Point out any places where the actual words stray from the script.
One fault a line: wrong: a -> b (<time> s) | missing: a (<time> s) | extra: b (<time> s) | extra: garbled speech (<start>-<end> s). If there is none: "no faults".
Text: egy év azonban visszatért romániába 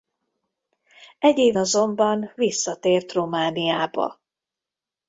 no faults